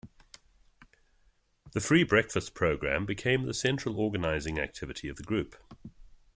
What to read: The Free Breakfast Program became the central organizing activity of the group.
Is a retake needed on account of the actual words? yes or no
no